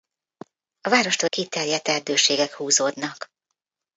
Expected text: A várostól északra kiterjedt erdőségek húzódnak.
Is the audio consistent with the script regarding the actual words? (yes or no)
no